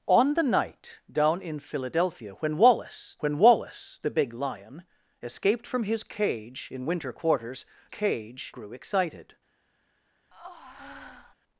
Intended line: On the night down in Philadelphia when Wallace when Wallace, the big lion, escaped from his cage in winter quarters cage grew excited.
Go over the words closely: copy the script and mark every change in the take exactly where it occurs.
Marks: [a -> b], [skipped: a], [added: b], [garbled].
On the night down in Philadelphia when Wallace when Wallace, the big lion, escaped from his cage in winter quarters cage grew excited.